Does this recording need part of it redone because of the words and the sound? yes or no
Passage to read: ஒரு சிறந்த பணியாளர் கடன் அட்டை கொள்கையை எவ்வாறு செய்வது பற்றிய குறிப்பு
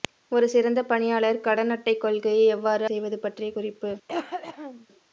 yes